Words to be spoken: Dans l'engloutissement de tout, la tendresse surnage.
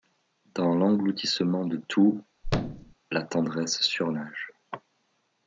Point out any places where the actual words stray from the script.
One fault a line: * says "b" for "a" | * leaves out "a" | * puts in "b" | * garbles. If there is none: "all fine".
all fine